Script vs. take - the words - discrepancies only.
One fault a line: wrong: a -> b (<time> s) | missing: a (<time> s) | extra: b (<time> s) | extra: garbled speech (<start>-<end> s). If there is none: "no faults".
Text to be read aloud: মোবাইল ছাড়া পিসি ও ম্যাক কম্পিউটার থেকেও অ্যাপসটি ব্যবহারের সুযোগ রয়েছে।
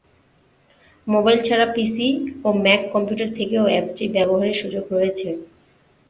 no faults